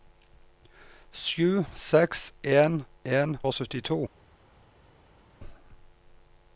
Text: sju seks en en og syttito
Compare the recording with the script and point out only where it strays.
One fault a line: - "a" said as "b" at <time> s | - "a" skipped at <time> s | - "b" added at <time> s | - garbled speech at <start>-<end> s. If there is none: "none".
none